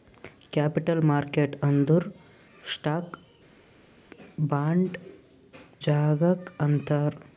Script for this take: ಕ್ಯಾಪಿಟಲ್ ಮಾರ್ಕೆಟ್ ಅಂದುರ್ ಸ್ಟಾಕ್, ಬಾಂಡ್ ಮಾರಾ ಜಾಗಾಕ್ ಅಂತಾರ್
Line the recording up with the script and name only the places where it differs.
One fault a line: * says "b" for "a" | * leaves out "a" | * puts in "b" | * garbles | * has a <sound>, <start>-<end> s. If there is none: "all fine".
* leaves out "ಮಾರಾ"